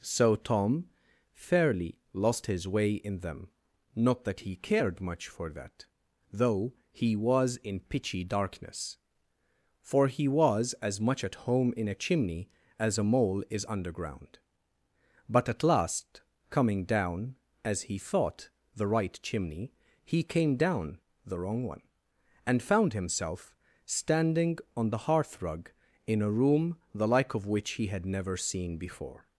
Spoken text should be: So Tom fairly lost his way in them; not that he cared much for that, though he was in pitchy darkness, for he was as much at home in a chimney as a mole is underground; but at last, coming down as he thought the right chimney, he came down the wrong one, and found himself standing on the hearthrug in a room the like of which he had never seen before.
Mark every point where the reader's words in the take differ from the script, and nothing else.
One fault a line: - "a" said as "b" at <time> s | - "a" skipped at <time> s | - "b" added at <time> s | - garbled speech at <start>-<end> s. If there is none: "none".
none